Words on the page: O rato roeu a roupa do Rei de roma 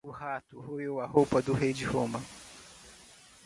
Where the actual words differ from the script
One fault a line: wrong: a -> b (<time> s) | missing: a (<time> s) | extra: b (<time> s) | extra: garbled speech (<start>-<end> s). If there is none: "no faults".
no faults